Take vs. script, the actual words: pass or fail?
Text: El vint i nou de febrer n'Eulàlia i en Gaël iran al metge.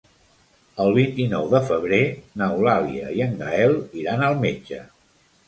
pass